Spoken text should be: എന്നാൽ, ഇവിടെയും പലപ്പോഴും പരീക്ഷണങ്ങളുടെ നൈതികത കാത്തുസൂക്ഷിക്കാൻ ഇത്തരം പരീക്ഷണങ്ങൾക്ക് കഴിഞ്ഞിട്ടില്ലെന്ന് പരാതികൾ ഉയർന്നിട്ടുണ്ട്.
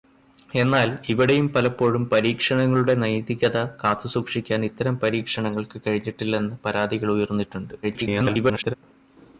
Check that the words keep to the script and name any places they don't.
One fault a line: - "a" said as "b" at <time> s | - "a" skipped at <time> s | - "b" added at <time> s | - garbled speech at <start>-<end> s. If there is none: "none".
- garbled speech at 7.8-8.7 s